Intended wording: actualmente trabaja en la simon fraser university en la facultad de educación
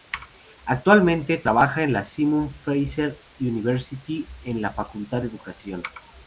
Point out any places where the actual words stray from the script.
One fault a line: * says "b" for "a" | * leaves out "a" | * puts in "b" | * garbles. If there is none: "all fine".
all fine